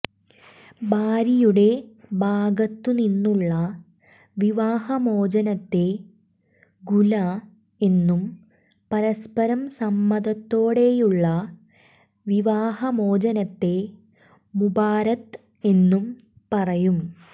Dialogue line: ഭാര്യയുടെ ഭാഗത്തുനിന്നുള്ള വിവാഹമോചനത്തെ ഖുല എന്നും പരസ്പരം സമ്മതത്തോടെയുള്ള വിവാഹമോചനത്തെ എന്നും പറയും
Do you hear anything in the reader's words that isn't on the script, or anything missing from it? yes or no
yes